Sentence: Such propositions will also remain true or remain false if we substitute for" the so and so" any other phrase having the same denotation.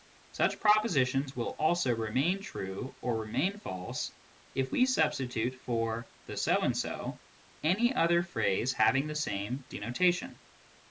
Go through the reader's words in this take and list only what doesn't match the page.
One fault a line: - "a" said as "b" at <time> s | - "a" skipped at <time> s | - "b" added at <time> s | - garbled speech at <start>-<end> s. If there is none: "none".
none